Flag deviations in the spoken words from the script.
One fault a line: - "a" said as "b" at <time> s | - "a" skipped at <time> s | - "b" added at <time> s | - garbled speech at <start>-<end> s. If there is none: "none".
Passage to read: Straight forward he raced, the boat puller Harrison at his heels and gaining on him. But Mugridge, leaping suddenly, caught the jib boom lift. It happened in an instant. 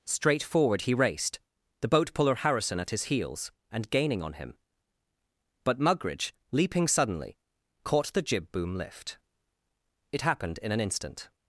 none